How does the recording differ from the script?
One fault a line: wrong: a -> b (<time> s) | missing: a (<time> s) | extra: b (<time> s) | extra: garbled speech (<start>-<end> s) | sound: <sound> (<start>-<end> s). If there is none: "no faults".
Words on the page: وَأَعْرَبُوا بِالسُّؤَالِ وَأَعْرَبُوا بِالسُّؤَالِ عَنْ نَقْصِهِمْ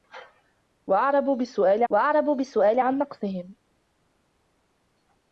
no faults